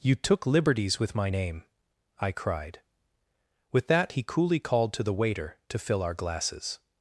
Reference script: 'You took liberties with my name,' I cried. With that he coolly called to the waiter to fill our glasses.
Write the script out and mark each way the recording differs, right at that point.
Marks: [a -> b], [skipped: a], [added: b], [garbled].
'You took liberties with my name,' I cried. With that he coolly called to the waiter to fill our glasses.